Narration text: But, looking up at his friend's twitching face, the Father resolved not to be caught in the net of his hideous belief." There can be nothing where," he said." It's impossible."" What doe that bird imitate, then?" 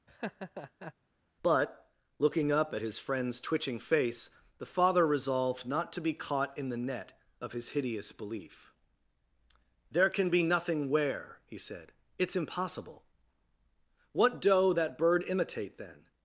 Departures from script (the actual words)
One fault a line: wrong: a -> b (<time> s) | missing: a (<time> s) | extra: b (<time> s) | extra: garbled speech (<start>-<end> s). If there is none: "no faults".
no faults